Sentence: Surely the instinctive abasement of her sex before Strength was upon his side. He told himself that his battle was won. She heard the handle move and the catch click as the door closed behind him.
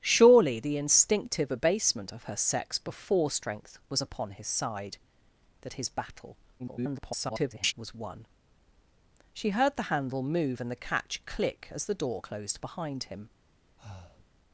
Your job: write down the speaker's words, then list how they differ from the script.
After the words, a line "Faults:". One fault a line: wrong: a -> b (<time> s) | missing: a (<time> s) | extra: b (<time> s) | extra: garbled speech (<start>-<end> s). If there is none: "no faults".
Surely the instinctive abasement of her sex before Strength was upon his side. That his battle [garbled] was won. She heard the handle move and the catch click as the door closed behind him.
Faults:
missing: He told himself (5.0 s)
extra: garbled speech (6.6-7.7 s)